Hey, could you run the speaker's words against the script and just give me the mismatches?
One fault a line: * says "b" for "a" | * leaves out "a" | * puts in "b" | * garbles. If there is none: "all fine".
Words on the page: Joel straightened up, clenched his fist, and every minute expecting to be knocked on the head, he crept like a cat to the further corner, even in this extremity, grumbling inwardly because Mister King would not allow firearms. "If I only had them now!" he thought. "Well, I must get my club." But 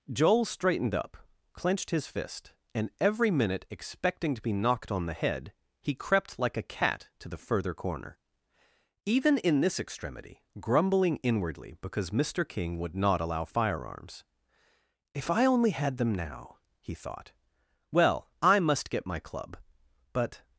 all fine